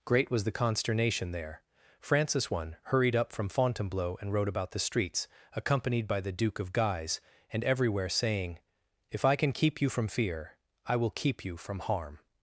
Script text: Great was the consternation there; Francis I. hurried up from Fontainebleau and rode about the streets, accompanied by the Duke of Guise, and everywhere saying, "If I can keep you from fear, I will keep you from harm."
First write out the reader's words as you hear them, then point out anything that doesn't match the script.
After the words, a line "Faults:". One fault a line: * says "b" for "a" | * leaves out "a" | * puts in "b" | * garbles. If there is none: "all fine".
Great was the consternation there; Francis I. hurried up from Fontainebleau and rode about the streets, accompanied by the Duke of Guise, and everywhere saying, "If I can keep you from fear, I will keep you from harm."
Faults:
all fine